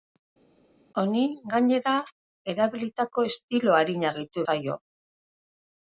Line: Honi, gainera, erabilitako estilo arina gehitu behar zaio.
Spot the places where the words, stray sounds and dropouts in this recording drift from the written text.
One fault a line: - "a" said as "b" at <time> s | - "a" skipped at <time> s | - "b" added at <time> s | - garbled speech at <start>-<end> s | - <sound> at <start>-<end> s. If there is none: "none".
- "behar" skipped at 4.5 s